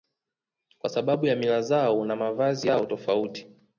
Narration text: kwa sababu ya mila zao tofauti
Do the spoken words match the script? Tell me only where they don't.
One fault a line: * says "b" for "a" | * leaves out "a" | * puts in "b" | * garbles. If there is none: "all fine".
* puts in "na mavazi yao"